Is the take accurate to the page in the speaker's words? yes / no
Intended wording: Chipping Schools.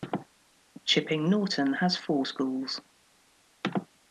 no